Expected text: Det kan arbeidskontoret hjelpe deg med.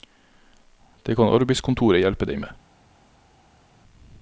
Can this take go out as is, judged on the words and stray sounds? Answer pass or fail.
pass